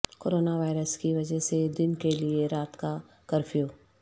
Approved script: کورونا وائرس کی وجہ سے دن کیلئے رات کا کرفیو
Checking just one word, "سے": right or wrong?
right